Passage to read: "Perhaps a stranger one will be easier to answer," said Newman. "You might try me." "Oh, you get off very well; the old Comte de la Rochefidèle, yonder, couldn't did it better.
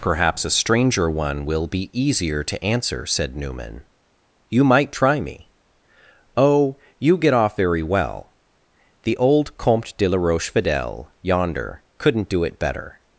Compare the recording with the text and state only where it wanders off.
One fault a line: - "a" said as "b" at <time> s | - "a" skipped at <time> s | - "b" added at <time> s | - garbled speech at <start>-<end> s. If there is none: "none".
- "did" said as "do" at 12.3 s